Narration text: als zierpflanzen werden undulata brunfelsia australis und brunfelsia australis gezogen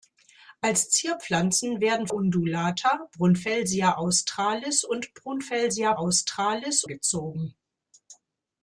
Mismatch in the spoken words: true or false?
false